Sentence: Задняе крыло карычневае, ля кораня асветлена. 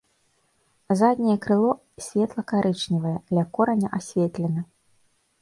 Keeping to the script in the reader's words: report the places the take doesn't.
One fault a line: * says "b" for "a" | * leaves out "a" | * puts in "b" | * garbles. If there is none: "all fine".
* puts in "светла"